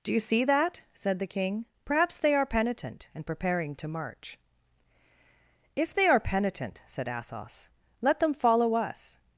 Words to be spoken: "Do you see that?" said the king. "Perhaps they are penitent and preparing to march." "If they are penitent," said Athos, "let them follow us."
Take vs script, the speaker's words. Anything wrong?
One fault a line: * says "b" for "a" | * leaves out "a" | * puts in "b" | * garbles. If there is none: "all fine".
all fine